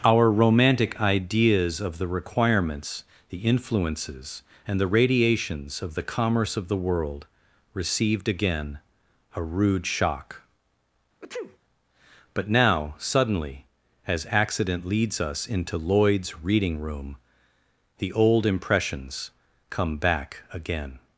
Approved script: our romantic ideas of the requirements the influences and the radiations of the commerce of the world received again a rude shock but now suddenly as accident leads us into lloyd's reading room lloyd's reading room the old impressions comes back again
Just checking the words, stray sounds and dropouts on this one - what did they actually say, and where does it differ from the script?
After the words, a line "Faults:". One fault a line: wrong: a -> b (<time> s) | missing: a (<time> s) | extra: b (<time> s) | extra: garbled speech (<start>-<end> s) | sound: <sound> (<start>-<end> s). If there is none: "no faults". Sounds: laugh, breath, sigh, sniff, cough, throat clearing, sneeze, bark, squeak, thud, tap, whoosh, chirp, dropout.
our romantic ideas of the requirements the influences and the radiations of the commerce of the world received again a rude shock but now suddenly as accident leads us into lloyd's reading room the old impressions come back again
Faults:
sound: sneeze (11.2-11.6 s)
missing: lloyd's reading room (17.2 s)
wrong: comes -> come (19.7 s)